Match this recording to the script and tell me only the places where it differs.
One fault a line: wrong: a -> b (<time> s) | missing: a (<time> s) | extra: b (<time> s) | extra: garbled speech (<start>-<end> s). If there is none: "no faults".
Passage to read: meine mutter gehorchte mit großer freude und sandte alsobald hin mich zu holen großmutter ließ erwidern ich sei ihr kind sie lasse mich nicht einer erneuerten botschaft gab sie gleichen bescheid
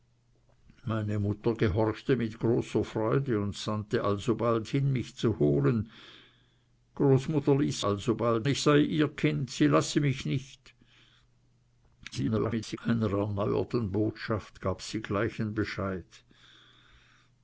wrong: erwidern -> alsobald (7.8 s)
extra: garbled speech (12.1-12.8 s)